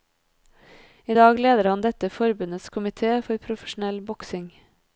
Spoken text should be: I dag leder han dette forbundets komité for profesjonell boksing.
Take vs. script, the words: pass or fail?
pass